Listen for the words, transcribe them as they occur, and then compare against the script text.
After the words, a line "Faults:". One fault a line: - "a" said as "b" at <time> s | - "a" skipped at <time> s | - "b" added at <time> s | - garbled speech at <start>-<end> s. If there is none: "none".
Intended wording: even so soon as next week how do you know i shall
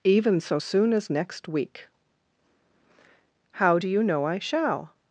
even so soon as next week how do you know i shall
Faults:
none